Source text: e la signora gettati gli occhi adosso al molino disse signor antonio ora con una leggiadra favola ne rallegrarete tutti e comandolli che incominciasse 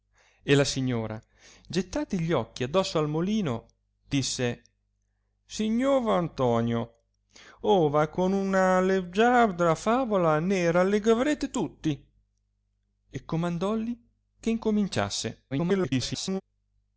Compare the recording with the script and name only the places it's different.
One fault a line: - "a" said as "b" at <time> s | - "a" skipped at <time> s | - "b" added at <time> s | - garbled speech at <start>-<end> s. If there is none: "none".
- garbled speech at 15.5-16.4 s